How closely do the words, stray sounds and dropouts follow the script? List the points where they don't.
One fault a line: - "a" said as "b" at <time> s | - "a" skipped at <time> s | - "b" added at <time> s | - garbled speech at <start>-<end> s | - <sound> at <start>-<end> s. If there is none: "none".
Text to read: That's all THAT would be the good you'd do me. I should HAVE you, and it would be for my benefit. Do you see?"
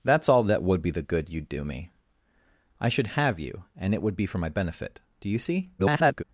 - garbled speech at 5.8-6.2 s